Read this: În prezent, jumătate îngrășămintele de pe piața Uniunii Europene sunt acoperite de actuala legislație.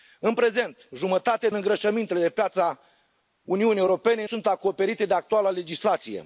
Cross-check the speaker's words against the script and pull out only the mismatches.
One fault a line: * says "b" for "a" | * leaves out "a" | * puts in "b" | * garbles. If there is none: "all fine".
all fine